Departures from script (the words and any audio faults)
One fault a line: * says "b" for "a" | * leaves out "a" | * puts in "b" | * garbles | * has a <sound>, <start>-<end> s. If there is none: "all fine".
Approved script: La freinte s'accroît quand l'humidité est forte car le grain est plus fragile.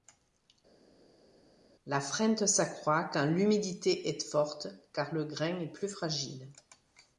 all fine